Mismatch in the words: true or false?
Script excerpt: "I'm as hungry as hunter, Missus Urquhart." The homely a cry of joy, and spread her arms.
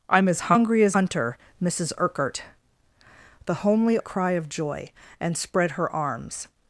false